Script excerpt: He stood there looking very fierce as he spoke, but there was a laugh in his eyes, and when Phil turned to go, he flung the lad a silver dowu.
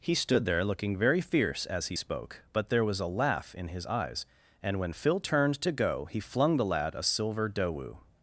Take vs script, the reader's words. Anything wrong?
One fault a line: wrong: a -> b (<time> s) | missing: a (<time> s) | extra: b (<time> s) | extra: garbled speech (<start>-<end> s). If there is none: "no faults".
no faults